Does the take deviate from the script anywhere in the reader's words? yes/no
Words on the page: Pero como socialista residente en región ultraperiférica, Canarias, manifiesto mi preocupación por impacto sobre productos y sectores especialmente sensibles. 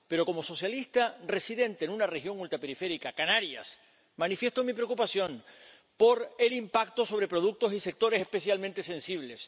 yes